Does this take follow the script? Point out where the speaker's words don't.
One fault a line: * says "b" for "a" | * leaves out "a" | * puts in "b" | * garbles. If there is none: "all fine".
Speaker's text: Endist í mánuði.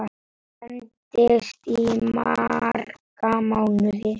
* puts in "marga"